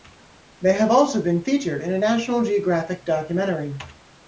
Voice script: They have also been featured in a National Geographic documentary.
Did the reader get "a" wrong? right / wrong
right